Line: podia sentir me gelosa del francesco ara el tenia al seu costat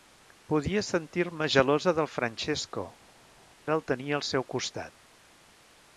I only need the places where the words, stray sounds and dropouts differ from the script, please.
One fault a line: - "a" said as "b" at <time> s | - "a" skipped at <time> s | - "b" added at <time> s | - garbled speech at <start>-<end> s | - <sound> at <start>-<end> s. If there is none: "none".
none